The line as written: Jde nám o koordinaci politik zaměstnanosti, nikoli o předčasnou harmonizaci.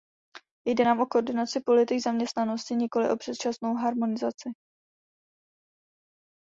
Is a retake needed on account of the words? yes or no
no